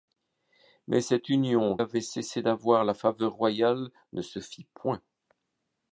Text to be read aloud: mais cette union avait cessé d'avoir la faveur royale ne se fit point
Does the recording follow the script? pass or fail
pass